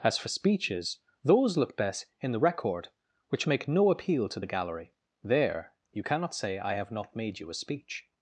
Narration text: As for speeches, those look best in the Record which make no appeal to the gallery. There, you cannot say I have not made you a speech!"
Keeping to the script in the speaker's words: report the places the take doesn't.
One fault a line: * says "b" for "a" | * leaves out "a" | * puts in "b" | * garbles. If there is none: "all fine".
all fine